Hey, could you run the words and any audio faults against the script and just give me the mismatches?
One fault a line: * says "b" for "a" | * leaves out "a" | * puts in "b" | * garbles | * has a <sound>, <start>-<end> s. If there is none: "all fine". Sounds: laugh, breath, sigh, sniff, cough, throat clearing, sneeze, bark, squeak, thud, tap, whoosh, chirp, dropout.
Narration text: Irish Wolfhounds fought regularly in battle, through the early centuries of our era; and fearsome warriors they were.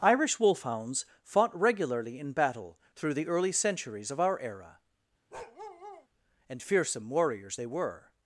* has a bark, 5.3-6.1 s